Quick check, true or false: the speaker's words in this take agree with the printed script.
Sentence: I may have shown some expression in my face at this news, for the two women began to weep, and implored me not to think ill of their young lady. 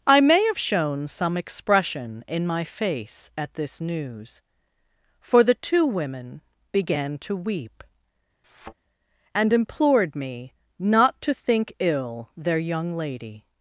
false